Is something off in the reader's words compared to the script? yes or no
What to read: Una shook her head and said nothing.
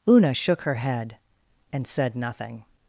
no